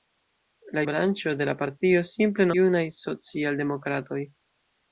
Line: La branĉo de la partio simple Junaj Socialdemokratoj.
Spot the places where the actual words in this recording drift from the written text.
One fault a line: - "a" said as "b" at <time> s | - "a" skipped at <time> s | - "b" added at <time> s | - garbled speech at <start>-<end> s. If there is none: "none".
none